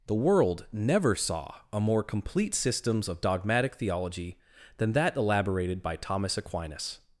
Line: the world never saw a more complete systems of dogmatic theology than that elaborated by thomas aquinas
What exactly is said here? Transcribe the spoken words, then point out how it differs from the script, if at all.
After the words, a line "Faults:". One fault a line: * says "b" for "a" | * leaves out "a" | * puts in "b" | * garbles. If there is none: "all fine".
the world never saw a more complete systems of dogmatic theology than that elaborated by thomas aquinas
Faults:
all fine